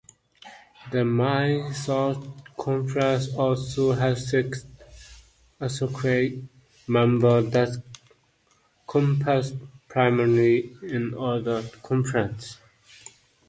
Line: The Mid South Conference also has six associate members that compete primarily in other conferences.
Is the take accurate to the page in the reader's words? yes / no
yes